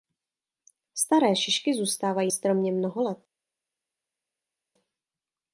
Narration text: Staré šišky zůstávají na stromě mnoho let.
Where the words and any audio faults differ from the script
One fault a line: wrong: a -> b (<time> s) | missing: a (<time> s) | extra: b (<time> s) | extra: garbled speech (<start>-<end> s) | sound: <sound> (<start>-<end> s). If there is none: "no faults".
missing: na (2.3 s)